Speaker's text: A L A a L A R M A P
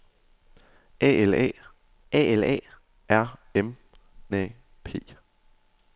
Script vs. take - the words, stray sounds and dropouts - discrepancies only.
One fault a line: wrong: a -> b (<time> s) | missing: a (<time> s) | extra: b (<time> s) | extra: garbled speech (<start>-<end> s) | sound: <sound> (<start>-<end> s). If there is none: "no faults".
no faults